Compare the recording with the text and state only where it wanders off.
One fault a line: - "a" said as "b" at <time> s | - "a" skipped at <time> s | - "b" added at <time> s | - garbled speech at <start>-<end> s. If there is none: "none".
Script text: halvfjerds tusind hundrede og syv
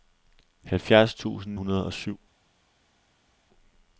none